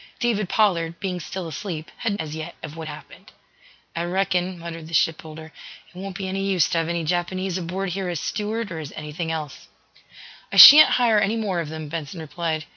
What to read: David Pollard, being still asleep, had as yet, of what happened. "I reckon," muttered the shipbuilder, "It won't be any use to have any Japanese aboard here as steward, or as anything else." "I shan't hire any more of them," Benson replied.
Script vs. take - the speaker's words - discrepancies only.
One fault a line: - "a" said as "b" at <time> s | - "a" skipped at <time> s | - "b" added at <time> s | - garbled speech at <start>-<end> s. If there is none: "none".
none